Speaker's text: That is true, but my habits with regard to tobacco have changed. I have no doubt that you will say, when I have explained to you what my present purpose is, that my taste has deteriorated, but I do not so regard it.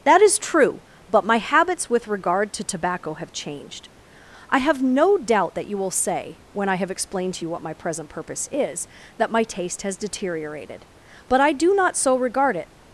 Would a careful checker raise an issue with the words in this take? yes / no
no